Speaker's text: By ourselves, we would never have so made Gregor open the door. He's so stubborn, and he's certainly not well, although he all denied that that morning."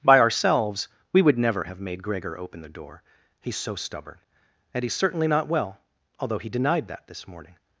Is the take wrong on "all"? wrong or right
wrong